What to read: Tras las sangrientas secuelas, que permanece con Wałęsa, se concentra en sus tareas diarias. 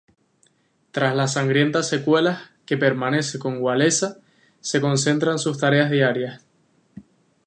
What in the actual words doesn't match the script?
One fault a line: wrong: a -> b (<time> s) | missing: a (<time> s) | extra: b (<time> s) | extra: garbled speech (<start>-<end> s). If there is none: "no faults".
no faults